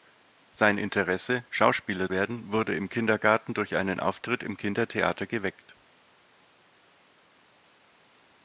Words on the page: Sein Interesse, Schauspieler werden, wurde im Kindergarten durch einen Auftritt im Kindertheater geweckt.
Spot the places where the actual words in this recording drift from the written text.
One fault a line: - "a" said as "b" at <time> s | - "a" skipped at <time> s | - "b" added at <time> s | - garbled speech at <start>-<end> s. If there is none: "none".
none